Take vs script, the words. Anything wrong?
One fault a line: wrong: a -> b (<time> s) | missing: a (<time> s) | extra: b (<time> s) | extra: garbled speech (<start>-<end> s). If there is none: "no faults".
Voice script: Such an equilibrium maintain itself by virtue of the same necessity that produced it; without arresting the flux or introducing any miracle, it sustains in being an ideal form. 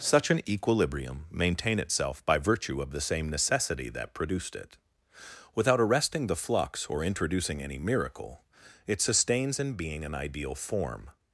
no faults